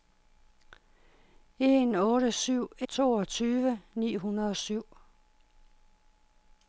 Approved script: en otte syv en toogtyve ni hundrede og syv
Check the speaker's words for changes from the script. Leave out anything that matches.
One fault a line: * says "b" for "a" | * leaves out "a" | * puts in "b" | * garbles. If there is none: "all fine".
* leaves out "en"